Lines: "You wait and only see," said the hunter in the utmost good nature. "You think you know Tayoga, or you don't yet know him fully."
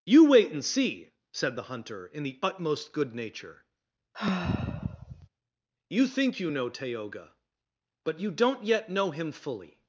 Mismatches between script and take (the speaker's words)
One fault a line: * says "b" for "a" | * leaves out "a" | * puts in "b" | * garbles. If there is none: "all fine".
* leaves out "only"
* says "but" for "or"